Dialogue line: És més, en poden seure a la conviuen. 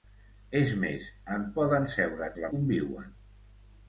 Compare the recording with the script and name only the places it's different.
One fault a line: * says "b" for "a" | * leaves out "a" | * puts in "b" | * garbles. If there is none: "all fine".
all fine